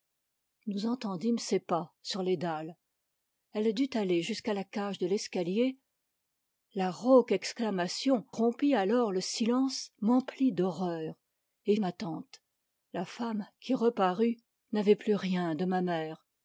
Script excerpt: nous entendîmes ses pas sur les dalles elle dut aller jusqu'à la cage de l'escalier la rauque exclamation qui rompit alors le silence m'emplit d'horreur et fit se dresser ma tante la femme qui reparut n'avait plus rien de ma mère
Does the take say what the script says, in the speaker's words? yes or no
no